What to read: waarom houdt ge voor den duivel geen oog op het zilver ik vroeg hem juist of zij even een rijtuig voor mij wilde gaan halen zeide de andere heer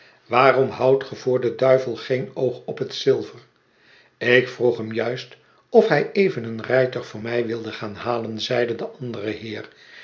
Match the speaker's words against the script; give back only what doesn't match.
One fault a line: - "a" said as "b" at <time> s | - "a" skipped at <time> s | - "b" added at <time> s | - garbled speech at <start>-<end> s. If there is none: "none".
- "zij" said as "hij" at 5.9 s